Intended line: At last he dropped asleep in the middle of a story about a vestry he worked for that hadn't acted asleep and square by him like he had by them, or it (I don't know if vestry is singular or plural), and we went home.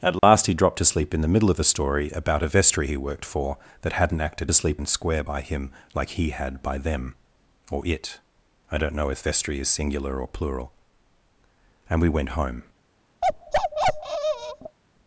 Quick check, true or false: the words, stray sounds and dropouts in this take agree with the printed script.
false